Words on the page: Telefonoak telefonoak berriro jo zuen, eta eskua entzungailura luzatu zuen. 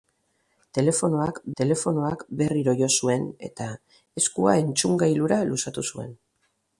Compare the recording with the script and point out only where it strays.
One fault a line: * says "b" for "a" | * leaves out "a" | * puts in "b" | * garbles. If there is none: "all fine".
all fine